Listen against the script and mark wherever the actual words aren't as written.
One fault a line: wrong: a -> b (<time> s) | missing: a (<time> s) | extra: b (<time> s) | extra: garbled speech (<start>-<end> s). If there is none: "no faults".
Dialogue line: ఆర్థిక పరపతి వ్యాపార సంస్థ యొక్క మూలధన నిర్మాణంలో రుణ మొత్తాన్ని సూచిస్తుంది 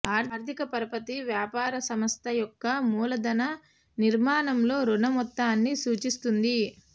no faults